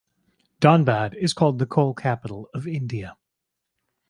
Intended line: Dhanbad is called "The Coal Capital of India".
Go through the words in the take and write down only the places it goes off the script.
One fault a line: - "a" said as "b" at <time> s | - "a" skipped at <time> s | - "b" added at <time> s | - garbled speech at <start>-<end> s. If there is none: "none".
none